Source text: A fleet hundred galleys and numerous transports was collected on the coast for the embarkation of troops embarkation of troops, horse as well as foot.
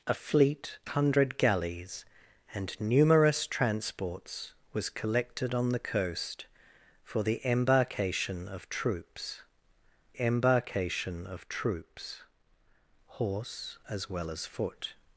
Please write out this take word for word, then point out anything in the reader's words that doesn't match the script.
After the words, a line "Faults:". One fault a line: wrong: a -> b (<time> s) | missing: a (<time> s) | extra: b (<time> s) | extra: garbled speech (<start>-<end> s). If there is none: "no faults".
A fleet hundred galleys and numerous transports was collected on the coast for the embarkation of troops embarkation of troops, horse as well as foot.
Faults:
no faults